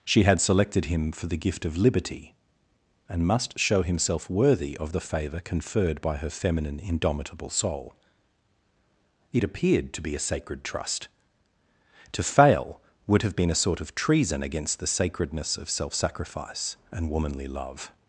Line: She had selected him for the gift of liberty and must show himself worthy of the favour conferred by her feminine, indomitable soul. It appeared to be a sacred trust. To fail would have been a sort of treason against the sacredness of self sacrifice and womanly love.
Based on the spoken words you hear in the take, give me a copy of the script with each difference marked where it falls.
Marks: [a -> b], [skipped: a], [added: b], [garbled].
She had selected him for the gift of liberty and must show himself worthy of the favour conferred by her feminine, indomitable soul. It appeared to be a sacred trust. To fail would have been a sort of treason against the sacredness of self sacrifice and womanly love.